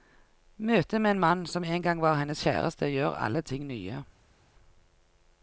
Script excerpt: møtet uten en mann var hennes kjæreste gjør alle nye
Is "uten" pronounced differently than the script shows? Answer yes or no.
yes